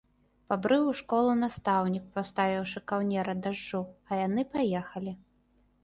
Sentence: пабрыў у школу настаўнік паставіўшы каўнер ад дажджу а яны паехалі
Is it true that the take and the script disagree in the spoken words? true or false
false